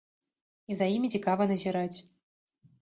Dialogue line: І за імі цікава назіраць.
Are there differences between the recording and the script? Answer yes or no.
no